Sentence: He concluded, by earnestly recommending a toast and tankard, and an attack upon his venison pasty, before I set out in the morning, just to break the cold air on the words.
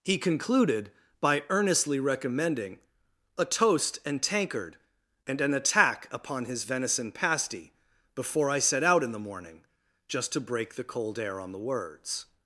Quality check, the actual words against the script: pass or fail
pass